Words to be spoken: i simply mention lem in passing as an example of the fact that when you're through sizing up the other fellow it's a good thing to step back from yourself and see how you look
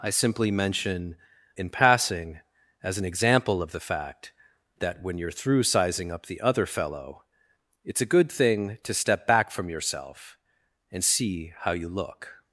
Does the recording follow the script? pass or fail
fail